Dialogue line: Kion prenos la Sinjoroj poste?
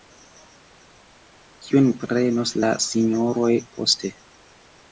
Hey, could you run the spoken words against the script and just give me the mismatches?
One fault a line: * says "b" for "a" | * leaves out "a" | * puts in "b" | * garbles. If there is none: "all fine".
all fine